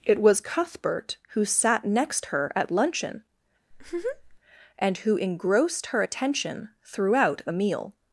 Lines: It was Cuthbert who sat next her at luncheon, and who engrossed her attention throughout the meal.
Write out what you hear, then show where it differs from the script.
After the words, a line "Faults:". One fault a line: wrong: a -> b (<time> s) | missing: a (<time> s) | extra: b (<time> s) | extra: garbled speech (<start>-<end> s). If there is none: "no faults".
It was Cuthbert who sat next her at luncheon, and who engrossed her attention throughout a meal.
Faults:
wrong: the -> a (7.4 s)